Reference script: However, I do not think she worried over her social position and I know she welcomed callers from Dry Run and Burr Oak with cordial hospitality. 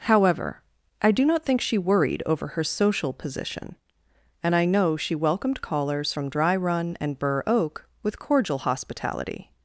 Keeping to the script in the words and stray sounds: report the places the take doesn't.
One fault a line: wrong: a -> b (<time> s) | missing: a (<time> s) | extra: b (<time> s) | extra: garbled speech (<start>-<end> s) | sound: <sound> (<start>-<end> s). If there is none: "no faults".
no faults